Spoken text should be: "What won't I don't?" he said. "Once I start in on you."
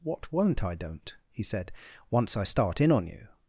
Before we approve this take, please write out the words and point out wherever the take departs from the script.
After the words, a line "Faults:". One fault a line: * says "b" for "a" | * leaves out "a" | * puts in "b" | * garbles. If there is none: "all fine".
"What won't I don't?" he said. "Once I start in on you."
Faults:
all fine